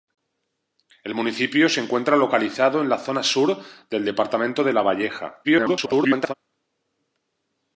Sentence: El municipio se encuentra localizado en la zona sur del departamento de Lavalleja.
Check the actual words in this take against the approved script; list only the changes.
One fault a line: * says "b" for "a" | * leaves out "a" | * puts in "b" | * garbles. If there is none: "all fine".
* garbles